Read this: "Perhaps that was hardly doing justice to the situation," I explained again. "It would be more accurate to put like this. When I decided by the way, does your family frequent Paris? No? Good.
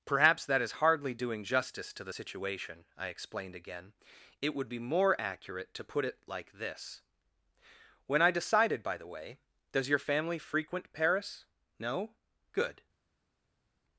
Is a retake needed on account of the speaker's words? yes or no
yes